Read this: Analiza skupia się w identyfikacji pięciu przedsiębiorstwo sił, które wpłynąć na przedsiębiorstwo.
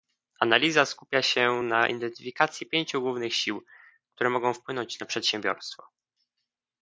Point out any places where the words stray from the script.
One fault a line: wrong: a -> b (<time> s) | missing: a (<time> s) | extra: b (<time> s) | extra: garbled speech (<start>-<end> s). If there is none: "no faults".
wrong: w -> na (1.6 s)
wrong: przedsiębiorstwo -> głównych (3.0 s)
extra: mogą (4.3 s)